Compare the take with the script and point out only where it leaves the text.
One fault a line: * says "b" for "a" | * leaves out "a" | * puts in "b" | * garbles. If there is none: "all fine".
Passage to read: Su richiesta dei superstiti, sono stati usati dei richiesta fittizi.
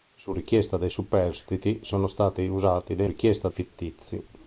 all fine